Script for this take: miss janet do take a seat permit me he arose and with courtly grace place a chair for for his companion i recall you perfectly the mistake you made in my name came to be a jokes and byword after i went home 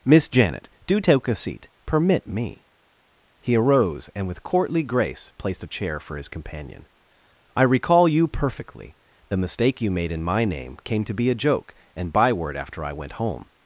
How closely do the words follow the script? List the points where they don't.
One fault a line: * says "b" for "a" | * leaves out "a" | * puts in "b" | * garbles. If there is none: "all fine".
* says "placed" for "place"
* leaves out "for"
* says "joke" for "jokes"